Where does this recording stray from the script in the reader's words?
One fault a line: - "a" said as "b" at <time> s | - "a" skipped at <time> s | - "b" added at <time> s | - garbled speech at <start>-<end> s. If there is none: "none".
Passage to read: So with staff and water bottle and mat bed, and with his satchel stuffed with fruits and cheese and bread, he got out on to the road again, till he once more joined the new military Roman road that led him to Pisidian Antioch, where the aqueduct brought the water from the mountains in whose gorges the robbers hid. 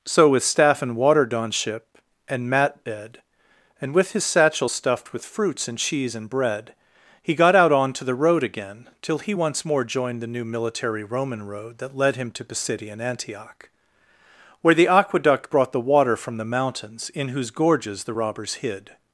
- "bottle" said as "donship" at 1.3 s